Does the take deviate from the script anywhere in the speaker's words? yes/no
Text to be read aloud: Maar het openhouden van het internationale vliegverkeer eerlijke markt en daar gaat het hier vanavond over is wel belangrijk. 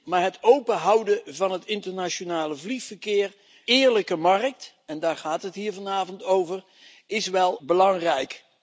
no